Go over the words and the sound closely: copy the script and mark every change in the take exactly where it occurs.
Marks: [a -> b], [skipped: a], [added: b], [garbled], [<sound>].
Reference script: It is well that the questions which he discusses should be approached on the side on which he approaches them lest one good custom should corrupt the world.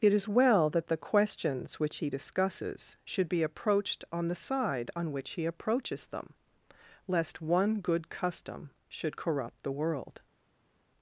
It is well that the questions which he discusses should be approached on the side on which he approaches them lest one good custom should corrupt the world.